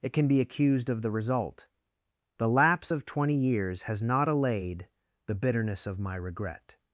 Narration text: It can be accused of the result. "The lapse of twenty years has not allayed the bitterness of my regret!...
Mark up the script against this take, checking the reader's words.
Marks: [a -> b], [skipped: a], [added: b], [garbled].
It can be accused of the result. "The lapse of twenty years has not allayed the bitterness of my regret!...